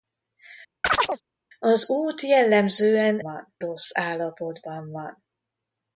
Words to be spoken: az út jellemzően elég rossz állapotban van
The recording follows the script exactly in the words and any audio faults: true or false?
false